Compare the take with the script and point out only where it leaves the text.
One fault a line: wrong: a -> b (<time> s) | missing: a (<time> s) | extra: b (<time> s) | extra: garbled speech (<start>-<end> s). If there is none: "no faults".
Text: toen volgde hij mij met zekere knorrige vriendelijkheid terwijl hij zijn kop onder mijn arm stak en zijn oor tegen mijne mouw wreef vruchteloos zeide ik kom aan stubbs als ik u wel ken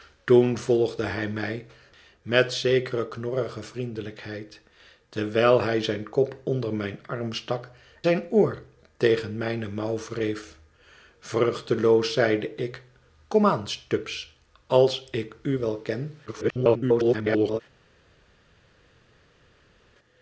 missing: en (7.7 s)
extra: garbled speech (16.3-17.6 s)